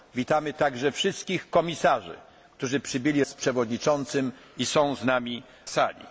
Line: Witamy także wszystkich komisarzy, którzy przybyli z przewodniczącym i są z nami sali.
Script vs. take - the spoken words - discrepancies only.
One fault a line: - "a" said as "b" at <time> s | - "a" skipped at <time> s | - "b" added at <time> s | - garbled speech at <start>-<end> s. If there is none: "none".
none